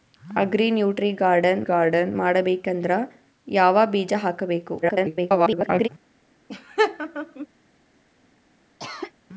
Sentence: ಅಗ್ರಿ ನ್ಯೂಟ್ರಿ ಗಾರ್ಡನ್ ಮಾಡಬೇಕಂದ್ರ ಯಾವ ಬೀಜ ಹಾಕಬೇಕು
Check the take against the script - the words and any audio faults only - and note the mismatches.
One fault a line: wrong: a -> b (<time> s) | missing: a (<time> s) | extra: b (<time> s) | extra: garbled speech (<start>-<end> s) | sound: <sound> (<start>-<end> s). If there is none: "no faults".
extra: ಗಾರ್ಡನ್ (1.6 s)
extra: garbled speech (4.8-5.9 s)
sound: laugh (6.5-7.5 s)
sound: cough (8.8-9.1 s)